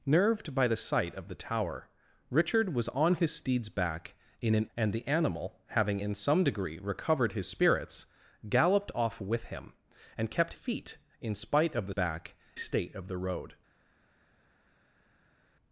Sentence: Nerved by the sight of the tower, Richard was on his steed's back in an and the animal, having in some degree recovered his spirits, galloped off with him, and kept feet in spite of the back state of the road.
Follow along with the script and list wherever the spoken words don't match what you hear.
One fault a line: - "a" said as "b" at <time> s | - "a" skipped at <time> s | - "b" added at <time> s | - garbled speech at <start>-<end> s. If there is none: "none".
none